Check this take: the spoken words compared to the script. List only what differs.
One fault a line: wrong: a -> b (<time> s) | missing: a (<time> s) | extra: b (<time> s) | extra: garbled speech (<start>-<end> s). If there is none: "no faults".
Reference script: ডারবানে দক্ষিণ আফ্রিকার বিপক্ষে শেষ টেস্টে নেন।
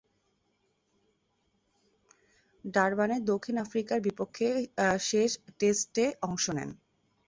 extra: অংশ (6.2 s)